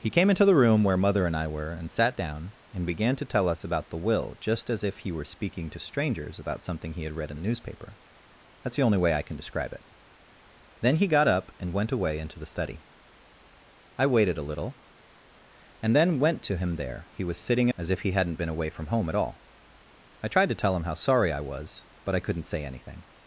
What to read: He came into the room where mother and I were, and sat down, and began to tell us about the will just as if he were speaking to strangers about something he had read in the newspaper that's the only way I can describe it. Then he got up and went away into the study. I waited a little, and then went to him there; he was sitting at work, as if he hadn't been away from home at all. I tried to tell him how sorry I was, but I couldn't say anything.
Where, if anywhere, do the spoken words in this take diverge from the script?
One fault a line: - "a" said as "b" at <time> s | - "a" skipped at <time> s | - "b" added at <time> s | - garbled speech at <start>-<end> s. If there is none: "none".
- "at work" skipped at 17.7 s